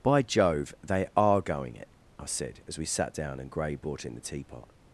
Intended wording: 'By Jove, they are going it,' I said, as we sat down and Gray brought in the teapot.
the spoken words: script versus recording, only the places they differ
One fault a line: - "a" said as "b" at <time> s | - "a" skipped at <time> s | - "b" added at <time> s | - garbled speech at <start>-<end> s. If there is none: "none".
none